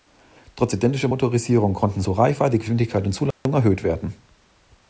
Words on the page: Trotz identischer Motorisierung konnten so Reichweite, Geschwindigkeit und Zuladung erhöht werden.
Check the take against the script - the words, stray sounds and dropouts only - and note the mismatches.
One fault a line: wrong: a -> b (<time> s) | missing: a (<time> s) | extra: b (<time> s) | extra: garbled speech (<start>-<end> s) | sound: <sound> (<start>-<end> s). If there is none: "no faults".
sound: dropout (3.3-3.5 s)